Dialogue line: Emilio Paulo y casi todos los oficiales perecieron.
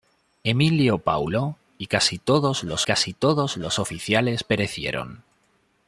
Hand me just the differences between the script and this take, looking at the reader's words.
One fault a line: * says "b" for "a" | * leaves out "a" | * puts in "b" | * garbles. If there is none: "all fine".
* puts in "casi todos los"